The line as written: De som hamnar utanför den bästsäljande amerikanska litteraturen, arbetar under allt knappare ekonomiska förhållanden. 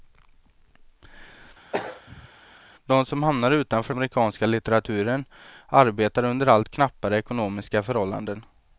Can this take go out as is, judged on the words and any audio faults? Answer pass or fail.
fail